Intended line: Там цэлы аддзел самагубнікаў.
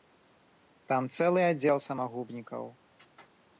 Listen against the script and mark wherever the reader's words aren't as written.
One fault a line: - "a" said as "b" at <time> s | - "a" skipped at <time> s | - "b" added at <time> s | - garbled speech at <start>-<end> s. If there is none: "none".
none